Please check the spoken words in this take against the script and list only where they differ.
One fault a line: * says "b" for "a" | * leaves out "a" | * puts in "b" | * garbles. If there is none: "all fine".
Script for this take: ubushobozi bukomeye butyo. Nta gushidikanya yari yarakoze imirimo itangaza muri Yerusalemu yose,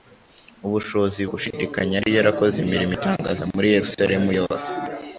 * leaves out "bukomeye butyo Nta"